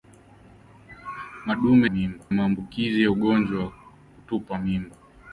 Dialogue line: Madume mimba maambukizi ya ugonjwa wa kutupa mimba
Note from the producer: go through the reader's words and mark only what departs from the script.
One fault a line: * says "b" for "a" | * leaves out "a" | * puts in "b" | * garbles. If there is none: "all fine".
all fine